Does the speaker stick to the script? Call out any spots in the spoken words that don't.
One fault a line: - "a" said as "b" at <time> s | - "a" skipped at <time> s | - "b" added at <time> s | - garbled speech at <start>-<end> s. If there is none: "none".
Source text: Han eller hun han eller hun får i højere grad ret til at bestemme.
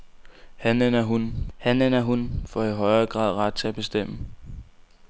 none